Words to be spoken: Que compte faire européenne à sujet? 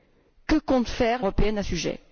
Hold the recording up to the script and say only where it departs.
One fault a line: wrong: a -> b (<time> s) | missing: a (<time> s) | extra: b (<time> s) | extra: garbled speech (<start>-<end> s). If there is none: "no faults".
no faults